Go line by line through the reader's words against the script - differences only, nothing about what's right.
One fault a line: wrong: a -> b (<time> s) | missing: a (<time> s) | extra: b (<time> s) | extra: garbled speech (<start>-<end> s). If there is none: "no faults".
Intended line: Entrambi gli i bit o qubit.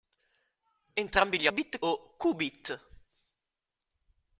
no faults